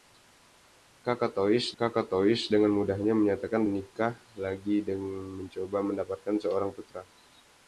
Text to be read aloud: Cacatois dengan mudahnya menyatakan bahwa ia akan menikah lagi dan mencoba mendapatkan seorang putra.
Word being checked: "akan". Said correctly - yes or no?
no